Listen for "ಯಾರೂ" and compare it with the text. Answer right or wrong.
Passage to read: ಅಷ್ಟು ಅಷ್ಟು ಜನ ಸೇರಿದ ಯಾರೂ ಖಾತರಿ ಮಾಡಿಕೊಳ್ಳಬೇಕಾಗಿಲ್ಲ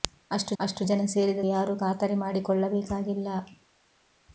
right